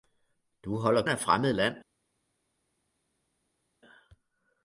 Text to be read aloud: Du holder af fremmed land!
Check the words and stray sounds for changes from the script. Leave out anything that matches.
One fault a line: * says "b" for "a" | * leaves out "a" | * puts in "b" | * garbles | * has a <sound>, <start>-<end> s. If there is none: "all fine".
all fine